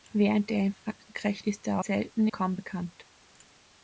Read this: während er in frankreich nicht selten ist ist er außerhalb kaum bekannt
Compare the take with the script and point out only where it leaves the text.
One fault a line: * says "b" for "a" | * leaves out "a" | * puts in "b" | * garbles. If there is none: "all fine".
* leaves out "nicht selten"
* leaves out "ist"
* says "selten" for "außerhalb"